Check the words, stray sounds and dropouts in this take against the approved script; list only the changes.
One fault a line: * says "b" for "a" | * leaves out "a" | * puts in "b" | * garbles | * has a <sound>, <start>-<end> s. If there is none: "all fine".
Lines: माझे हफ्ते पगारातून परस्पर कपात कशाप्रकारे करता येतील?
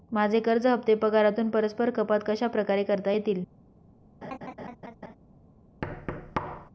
* puts in "कर्ज"
* has a laugh, 4.2-5.2 s
* has a thud, 5.8-6.7 s